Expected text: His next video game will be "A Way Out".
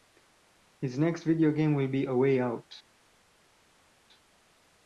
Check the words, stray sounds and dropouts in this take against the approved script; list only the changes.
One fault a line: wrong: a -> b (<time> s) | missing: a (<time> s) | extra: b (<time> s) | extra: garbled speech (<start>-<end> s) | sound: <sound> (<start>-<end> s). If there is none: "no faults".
no faults